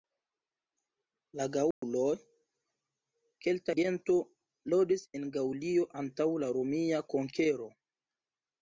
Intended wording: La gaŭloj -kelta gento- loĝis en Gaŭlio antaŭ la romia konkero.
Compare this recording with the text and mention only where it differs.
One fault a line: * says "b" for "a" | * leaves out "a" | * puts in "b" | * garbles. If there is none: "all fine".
all fine